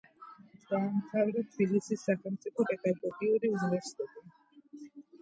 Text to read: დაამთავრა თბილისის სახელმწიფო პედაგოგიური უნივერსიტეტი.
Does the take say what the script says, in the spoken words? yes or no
yes